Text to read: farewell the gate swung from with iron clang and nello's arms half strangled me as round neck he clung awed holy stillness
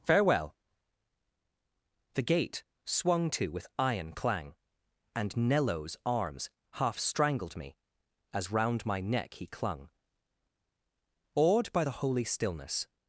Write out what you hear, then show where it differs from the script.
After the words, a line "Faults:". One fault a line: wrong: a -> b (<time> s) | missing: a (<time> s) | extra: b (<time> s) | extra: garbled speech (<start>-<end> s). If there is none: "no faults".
farewell the gate swung to with iron clang and nello's arms half strangled me as round my neck he clung awed by the holy stillness
Faults:
wrong: from -> to (3.3 s)
extra: my (8.9 s)
extra: by the (11.7 s)